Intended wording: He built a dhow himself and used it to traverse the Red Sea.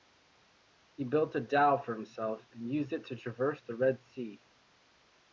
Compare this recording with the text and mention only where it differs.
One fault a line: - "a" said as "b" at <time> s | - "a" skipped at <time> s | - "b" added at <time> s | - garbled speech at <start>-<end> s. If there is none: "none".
- "for" added at 1.8 s